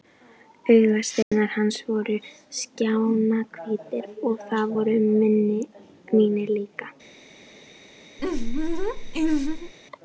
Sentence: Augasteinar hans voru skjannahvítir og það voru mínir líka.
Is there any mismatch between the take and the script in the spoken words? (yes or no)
no